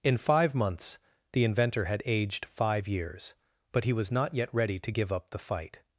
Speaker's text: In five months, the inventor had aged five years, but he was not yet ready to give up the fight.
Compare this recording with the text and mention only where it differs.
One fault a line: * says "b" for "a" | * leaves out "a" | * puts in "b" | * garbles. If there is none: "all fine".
all fine